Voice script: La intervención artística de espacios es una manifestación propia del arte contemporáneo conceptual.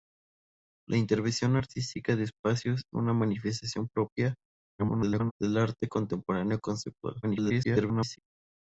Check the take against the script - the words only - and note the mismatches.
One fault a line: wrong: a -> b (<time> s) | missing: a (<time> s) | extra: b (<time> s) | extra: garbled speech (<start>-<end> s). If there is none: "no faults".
missing: es (2.8 s)
extra: garbled speech (4.8-5.3 s)
extra: garbled speech (7.2-8.2 s)